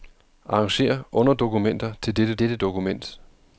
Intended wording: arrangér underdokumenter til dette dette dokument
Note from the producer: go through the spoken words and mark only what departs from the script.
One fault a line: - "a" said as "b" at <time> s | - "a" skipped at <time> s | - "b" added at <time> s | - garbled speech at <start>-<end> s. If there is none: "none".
none